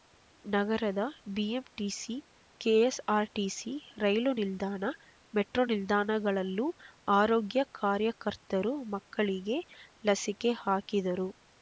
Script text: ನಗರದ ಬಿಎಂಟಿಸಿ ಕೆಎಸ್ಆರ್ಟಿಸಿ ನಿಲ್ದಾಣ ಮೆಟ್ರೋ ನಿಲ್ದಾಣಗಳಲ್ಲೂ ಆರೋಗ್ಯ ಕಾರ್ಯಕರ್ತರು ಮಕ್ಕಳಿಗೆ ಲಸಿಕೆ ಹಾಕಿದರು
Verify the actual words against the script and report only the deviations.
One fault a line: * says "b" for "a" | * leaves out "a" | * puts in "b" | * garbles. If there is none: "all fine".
* puts in "ರೈಲು"